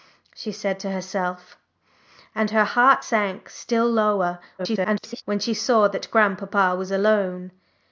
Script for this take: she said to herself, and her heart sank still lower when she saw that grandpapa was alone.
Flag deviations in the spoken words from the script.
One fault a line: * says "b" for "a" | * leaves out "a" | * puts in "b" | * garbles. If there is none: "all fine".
* garbles